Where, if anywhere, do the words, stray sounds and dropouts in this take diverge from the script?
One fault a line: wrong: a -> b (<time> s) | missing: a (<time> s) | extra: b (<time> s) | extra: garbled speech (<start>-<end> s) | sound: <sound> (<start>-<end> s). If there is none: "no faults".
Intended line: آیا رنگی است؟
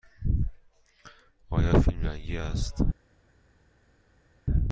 extra: فیلم (1.8 s)